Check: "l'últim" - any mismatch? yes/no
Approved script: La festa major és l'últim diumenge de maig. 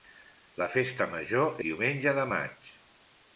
yes